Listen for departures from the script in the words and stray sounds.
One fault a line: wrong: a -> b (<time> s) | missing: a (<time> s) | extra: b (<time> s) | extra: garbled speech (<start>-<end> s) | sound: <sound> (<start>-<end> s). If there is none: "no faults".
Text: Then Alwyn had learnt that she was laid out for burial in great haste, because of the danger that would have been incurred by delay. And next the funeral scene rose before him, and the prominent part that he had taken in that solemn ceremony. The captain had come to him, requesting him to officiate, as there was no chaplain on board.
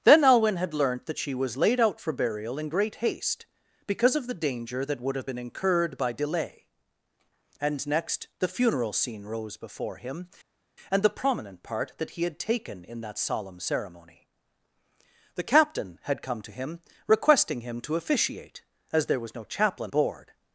missing: on (19.9 s)